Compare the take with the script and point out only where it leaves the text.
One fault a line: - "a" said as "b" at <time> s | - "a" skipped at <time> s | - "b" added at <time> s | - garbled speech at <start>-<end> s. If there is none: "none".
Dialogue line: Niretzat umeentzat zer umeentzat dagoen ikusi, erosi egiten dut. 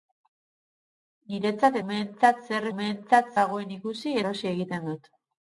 none